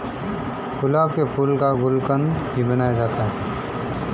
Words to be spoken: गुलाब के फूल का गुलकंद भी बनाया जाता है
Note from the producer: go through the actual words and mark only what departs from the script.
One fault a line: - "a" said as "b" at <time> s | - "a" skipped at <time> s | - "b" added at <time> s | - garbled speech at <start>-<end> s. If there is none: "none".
none